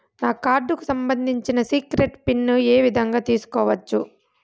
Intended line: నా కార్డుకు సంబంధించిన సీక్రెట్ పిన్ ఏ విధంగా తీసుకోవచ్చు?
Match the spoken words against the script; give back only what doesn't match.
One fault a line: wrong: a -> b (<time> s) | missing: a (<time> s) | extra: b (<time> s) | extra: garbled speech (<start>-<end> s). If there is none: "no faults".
no faults